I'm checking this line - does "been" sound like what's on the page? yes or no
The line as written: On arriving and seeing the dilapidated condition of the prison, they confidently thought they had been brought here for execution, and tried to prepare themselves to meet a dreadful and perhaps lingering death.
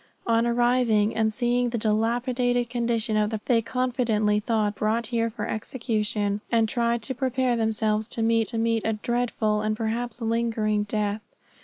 no